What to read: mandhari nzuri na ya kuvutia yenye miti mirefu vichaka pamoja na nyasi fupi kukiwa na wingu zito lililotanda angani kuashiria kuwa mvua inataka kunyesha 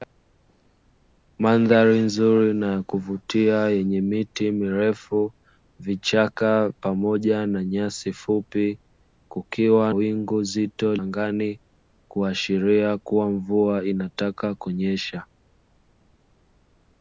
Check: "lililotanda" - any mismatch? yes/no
yes